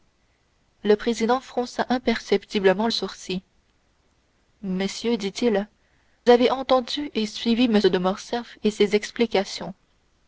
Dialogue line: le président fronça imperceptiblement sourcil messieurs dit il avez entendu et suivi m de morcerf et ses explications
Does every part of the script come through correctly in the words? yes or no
yes